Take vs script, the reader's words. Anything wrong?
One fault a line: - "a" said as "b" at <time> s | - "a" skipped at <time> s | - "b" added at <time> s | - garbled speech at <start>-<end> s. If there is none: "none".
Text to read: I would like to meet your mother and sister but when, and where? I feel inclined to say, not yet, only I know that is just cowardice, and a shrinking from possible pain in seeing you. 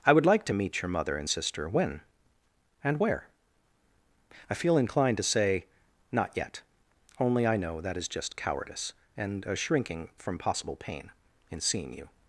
- "but" skipped at 1.7 s